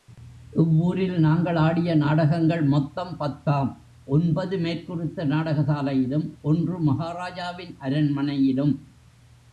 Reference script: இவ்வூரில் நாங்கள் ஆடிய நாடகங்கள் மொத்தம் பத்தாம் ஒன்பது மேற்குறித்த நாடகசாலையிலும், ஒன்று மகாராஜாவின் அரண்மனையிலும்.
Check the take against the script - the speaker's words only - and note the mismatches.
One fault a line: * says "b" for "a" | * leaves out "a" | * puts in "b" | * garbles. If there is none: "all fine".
all fine